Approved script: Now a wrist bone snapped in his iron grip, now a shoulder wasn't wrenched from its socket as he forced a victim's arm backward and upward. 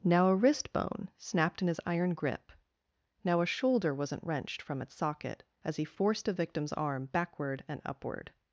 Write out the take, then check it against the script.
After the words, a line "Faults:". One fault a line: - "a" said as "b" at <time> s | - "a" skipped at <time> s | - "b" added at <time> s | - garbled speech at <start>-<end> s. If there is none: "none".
Now a wrist bone snapped in his iron grip, now a shoulder wasn't wrenched from its socket as he forced a victim's arm backward and upward.
Faults:
none